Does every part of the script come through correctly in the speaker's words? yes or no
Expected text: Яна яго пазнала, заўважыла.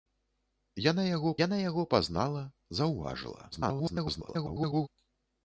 no